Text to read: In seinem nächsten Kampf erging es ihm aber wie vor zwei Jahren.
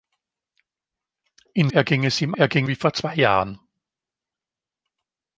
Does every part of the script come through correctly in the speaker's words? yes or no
no